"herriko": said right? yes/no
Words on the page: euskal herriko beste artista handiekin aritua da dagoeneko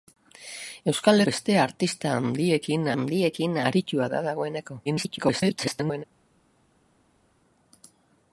no